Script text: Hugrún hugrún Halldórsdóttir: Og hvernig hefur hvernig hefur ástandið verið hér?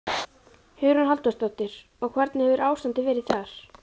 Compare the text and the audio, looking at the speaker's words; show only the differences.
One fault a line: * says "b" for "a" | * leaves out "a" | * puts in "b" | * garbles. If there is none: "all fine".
* leaves out "hugrún"
* leaves out "hvernig hefur"
* says "þar" for "hér"